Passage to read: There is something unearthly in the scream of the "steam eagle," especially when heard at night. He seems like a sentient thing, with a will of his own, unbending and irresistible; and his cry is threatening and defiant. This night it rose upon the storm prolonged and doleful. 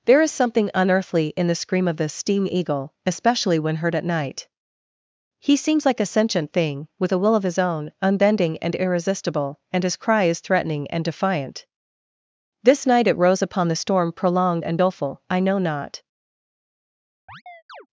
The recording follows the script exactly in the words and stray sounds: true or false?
false